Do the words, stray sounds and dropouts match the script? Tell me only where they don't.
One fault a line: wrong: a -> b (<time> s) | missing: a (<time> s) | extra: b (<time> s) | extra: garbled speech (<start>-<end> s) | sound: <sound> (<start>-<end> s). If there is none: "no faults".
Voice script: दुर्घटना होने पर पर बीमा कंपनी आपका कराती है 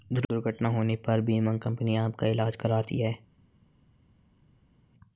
missing: पर (1.2 s)
extra: ईलाज (2.3 s)